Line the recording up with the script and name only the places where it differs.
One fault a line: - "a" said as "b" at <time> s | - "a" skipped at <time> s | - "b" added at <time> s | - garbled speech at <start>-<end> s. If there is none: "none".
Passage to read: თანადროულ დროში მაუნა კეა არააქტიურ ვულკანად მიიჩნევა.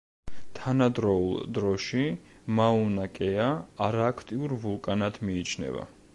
none